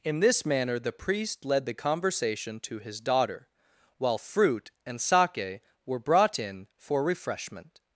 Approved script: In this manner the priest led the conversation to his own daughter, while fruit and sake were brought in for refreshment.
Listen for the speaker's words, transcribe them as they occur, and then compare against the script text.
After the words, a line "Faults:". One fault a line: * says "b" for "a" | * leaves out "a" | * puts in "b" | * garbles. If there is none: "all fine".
In this manner the priest led the conversation to his daughter, while fruit and sake were brought in for refreshment.
Faults:
* leaves out "own"